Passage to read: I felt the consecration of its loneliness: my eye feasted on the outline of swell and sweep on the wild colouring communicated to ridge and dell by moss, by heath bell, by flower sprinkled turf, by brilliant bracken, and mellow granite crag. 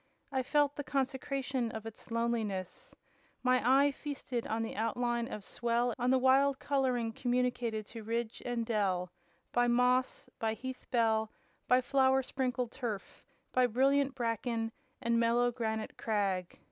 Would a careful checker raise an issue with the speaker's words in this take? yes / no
yes